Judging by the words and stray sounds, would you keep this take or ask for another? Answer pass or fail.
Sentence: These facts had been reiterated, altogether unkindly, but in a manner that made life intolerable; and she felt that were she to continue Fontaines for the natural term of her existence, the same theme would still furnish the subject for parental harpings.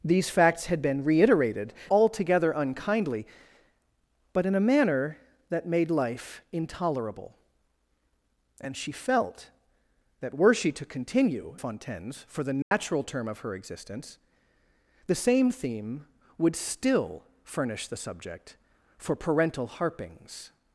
fail